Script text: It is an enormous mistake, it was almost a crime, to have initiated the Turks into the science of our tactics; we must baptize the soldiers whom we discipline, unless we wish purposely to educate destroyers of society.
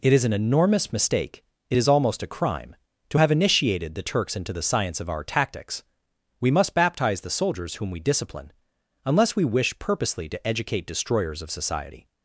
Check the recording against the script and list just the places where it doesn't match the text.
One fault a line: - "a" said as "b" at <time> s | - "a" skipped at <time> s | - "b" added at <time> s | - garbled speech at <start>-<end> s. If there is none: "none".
- "was" said as "is" at 1.8 s